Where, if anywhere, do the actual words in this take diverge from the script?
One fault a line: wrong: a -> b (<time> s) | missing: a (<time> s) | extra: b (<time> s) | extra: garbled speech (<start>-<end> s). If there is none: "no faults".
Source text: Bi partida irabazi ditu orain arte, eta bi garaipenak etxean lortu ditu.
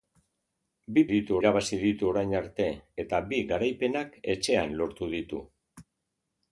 wrong: partida -> ditu (1.1 s)